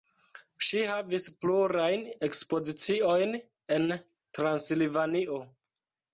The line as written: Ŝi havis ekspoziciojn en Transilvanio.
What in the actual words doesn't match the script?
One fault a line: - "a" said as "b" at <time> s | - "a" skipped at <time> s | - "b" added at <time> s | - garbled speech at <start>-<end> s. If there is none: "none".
- "plurajn" added at 1.4 s